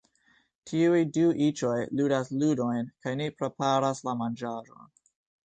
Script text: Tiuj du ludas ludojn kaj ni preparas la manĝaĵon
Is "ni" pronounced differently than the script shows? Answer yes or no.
no